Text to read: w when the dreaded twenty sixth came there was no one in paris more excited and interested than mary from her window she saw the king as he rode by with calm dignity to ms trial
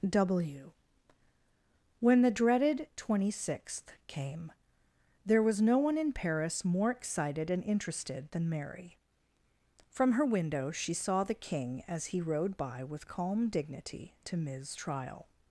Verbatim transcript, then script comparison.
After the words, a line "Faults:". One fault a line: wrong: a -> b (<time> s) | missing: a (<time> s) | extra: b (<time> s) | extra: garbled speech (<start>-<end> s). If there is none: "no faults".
w when the dreaded twenty sixth came there was no one in paris more excited and interested than mary from her window she saw the king as he rode by with calm dignity to ms trial
Faults:
no faults